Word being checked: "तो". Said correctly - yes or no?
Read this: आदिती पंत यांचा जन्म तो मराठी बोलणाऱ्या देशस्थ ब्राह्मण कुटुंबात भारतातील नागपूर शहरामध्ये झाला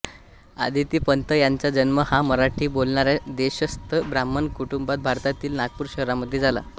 no